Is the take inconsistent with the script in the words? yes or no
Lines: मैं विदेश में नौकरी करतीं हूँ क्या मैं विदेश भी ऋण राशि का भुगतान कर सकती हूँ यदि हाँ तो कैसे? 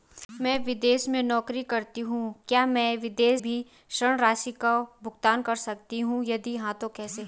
no